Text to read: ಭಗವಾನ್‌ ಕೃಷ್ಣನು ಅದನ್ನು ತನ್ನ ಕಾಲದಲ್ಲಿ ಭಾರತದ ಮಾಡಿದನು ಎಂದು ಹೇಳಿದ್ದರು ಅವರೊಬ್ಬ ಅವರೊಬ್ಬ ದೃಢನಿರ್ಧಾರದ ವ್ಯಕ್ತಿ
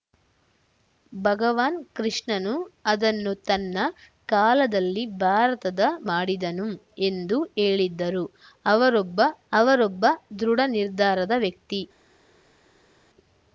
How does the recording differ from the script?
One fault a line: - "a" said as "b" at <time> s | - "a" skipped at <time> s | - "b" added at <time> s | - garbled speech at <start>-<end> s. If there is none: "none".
none